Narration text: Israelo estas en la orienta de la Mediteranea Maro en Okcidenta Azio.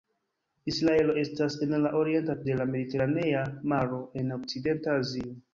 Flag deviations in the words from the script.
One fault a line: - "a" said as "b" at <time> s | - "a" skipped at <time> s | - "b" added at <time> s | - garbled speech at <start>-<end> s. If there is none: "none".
none